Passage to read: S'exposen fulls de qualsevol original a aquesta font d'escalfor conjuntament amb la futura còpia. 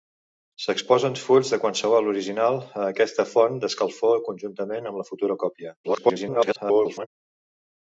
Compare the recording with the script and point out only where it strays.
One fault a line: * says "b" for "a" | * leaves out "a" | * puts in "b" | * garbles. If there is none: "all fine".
* garbles